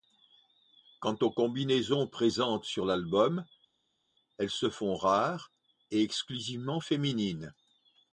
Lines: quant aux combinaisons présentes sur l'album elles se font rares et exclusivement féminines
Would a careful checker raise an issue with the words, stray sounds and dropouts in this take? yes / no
no